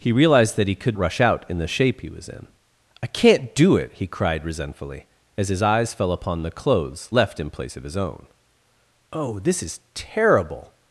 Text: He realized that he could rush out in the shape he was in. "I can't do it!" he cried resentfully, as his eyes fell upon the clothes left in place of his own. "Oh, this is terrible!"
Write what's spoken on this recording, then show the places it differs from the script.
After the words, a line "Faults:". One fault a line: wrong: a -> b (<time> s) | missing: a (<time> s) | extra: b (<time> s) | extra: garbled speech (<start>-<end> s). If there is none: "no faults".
He realized that he could rush out in the shape he was in. "I can't do it!" he cried resentfully, as his eyes fell upon the clothes left in place of his own. "Oh, this is terrible!"
Faults:
no faults